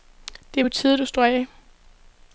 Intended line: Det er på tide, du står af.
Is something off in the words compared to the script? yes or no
no